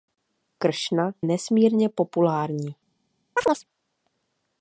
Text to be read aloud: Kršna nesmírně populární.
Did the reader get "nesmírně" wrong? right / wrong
right